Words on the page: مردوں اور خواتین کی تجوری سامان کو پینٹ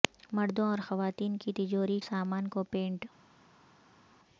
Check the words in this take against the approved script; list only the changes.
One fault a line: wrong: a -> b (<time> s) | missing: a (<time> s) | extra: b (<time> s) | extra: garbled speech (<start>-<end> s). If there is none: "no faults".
no faults